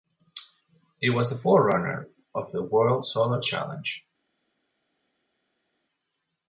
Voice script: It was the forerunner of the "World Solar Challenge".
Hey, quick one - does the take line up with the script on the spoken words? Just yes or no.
yes